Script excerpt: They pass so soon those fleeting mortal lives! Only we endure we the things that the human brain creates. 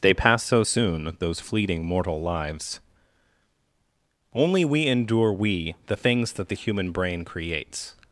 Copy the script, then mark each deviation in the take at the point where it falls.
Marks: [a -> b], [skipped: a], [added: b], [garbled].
They pass so soon those fleeting mortal lives! Only we endure we the things that the human brain creates.